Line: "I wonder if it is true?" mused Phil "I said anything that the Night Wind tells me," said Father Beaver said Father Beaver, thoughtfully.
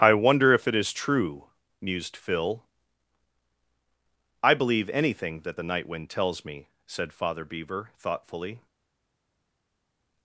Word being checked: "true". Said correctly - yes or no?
yes